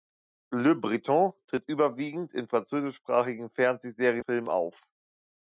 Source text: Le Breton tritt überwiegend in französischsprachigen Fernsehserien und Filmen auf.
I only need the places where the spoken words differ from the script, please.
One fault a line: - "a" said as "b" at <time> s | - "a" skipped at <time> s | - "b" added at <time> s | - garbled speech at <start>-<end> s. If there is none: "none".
- "und" skipped at 4.2 s